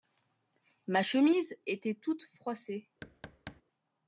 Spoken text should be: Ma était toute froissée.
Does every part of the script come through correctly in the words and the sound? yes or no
no